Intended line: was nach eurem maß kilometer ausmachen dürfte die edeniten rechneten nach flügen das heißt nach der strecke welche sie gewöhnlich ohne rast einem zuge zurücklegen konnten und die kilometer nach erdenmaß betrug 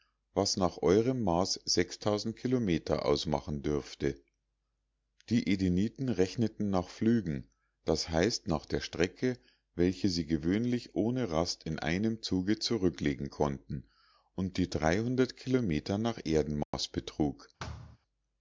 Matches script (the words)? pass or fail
fail